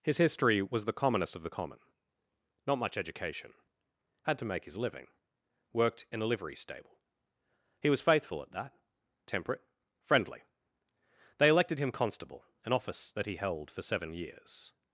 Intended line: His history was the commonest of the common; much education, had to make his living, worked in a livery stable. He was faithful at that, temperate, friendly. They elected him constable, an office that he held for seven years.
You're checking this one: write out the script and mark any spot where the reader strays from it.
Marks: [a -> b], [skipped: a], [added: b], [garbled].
His history was the commonest of the common; [added: not] much education, had to make his living, worked in a livery stable. He was faithful at that, temperate, friendly. They elected him constable, an office that he held for seven years.